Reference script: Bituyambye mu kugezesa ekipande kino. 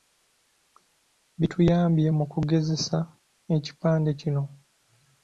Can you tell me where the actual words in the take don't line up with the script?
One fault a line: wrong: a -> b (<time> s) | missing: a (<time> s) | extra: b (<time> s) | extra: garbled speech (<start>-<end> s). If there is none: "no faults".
no faults